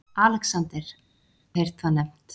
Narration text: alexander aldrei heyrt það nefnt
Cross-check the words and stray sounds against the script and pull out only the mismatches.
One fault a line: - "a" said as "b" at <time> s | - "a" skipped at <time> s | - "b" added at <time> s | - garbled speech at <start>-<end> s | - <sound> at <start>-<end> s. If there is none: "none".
- "aldrei" skipped at 0.9 s